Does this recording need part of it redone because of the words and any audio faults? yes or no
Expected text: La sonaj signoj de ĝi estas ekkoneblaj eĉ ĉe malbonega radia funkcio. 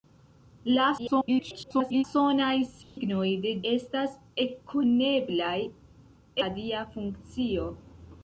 yes